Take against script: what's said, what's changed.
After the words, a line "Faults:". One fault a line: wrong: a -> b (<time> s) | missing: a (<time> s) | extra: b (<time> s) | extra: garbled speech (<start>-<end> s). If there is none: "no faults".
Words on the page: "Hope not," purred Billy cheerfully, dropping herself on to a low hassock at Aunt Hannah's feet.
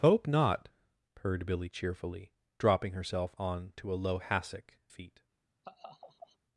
"Hope not," purred Billy cheerfully, dropping herself on to a low hassock feet.
Faults:
missing: at Aunt Hannah's (4.8 s)